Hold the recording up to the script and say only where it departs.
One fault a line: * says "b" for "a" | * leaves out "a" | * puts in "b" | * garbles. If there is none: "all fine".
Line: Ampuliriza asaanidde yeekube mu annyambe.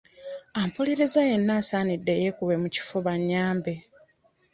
* puts in "yenna"
* puts in "kifuba"